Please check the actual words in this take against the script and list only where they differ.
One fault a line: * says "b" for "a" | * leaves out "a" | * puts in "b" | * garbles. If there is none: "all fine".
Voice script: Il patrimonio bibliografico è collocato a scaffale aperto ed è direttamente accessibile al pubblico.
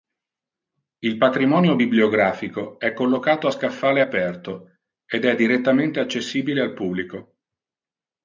all fine